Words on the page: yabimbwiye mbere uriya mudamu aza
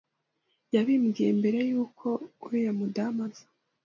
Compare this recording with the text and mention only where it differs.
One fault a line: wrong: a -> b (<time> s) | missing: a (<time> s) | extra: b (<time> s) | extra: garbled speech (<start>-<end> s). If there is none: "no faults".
extra: y'uko (1.7 s)